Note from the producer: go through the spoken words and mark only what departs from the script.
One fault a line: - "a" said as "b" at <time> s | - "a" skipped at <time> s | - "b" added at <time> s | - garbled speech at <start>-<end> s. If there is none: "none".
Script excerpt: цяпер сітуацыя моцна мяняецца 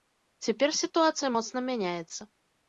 none